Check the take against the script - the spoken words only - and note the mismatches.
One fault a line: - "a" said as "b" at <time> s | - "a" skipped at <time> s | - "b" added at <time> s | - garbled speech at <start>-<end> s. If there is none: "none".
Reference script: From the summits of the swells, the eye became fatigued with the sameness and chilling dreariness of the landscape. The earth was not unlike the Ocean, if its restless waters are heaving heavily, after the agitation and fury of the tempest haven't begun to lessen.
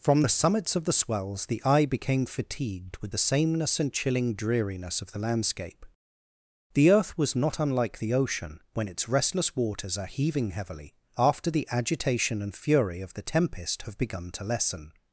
- "if" said as "when" at 8.7 s
- "haven't" said as "have" at 13.8 s